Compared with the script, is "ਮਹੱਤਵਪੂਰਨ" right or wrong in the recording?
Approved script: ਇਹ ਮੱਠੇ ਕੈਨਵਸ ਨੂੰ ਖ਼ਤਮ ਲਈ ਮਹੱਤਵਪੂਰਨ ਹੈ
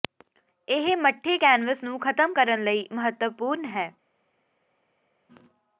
right